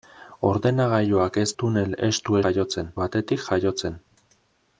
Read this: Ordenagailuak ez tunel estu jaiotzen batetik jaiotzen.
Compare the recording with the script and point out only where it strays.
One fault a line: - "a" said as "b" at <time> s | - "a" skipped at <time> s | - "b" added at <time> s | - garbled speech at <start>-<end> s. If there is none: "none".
none